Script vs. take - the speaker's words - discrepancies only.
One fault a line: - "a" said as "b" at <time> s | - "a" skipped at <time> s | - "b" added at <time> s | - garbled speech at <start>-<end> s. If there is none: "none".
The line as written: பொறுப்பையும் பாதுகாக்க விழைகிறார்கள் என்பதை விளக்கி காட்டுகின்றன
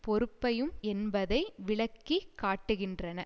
- "பாதுகாக்க விழைகிறார்கள்" skipped at 0.7 s